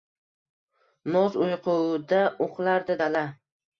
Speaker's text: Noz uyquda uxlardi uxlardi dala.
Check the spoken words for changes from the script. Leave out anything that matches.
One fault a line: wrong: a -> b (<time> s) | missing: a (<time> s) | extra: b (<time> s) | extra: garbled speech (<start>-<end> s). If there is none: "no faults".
missing: uxlardi (3.0 s)